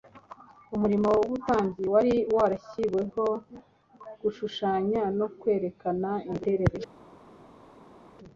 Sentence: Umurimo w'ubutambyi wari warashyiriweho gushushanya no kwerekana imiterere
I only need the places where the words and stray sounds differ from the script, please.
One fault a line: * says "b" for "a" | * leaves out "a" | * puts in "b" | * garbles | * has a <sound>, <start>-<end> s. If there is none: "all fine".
all fine